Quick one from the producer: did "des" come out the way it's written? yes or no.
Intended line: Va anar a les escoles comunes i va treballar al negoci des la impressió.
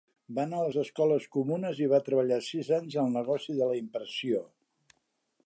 no